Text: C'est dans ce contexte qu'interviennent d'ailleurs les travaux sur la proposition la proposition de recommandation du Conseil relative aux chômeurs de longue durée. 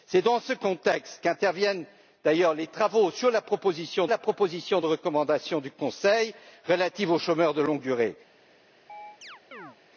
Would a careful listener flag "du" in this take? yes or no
no